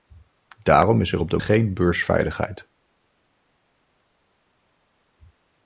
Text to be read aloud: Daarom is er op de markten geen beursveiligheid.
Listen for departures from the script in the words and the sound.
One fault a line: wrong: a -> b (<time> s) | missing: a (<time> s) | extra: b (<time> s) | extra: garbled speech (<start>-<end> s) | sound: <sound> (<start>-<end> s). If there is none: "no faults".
missing: markten (1.4 s)